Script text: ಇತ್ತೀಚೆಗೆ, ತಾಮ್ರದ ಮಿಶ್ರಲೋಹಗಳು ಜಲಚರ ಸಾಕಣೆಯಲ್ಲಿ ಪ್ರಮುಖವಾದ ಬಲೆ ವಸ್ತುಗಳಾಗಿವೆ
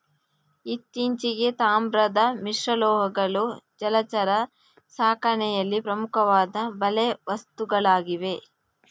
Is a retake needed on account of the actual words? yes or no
no